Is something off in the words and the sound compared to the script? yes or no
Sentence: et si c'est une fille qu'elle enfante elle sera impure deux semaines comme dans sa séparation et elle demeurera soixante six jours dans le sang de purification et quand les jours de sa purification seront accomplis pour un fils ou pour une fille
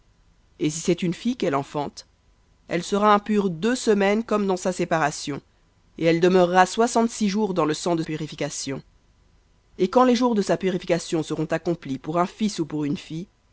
no